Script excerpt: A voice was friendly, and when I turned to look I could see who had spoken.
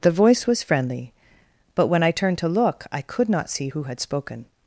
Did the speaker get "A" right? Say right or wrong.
wrong